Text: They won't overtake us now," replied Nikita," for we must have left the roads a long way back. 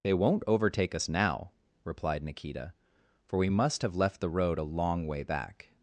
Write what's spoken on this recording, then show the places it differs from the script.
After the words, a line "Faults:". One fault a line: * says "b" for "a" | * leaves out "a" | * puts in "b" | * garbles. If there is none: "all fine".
They won't overtake us now," replied Nikita," for we must have left the road a long way back.
Faults:
* says "road" for "roads"